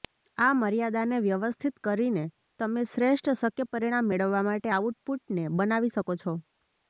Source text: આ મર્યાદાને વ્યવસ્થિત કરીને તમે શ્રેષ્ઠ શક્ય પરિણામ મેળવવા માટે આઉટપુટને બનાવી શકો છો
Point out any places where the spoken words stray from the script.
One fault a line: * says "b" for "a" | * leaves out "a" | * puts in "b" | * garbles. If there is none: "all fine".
all fine